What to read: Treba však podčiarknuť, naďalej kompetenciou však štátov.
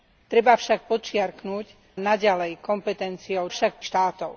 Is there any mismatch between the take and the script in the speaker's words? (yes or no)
no